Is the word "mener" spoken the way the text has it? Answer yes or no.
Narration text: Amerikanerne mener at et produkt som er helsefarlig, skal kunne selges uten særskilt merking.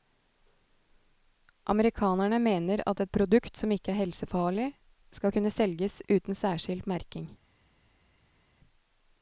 yes